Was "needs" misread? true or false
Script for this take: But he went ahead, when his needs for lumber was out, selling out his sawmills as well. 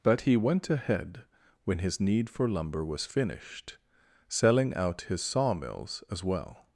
true